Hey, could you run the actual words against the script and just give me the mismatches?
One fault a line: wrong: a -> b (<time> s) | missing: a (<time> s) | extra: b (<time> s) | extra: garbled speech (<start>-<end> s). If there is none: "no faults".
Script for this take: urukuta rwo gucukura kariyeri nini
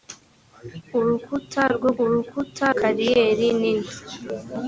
wrong: gucukura -> urukuta (2.0 s)